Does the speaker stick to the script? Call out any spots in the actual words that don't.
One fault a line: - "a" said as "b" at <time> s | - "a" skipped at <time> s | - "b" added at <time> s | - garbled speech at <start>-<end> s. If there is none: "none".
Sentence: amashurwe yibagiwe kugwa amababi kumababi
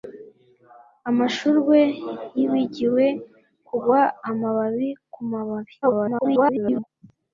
- garbled speech at 5.8-6.9 s